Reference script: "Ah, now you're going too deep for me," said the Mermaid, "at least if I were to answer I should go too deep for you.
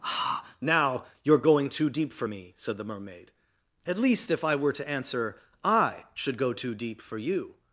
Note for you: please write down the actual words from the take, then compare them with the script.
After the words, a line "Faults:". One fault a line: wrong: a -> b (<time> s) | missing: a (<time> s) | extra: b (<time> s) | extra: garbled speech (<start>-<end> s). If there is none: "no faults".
"Ah, now you're going too deep for me," said the Mermaid, "at least if I were to answer I should go too deep for you.
Faults:
no faults